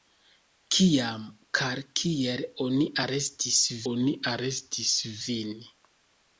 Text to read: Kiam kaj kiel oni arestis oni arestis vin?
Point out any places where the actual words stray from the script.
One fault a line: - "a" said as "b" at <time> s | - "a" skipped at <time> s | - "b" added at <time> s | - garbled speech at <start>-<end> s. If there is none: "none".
none